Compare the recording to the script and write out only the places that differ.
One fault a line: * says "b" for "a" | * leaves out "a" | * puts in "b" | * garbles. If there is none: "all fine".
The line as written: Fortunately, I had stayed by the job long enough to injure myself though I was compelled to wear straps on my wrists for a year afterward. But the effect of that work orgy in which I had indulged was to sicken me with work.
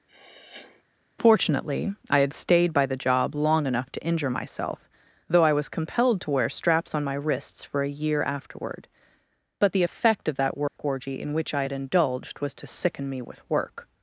all fine